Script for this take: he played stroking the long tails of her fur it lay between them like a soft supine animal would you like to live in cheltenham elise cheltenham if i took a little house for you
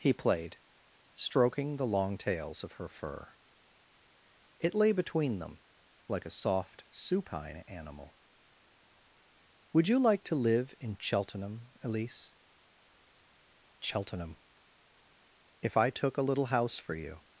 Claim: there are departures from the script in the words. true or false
false